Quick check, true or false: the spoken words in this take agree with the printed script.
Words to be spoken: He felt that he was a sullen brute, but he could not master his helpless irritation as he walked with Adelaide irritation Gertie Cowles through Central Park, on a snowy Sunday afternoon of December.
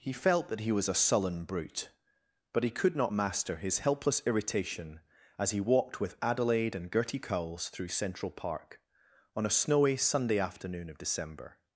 false